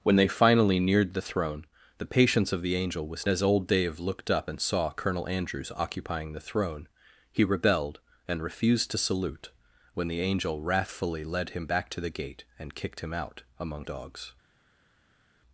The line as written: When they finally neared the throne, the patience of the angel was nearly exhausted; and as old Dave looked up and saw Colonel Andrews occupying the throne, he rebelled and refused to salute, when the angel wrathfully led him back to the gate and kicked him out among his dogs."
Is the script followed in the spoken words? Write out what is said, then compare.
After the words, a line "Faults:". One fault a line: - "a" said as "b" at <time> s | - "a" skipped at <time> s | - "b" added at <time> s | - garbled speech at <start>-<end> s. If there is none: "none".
When they finally neared the throne, the patience of the angel was as old Dave looked up and saw Colonel Andrews occupying the throne, he rebelled and refused to salute, when the angel wrathfully led him back to the gate and kicked him out among dogs."
Faults:
- "nearly exhausted and" skipped at 3.3 s
- "his" skipped at 13.8 s